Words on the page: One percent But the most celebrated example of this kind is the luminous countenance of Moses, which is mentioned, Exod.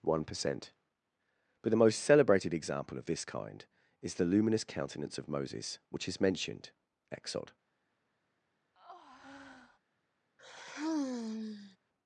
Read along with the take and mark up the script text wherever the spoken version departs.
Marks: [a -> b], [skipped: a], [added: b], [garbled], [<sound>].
One percent But the most celebrated example of this kind is the luminous countenance of Moses, which is mentioned, Exod. [breath] [sigh]